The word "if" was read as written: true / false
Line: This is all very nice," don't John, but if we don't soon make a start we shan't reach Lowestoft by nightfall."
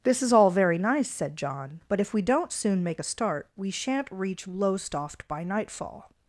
true